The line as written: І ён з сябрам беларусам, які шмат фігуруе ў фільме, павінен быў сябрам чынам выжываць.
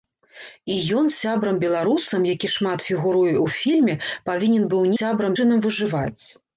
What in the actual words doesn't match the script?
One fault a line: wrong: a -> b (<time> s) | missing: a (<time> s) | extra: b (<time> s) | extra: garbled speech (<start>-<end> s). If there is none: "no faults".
no faults